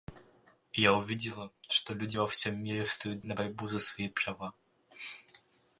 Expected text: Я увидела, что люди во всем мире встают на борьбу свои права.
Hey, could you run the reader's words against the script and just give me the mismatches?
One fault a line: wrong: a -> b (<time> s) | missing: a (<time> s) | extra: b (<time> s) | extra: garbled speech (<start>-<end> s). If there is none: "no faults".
extra: за (3.7 s)